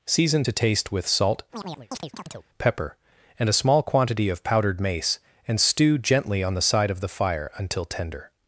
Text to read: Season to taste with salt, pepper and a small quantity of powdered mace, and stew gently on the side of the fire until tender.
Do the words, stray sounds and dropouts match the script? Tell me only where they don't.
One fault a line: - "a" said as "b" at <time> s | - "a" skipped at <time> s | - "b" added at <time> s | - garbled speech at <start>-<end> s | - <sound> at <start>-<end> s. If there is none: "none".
- chirp at 1.5-2.5 s